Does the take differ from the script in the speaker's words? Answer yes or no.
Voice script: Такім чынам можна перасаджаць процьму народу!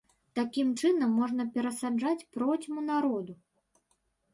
no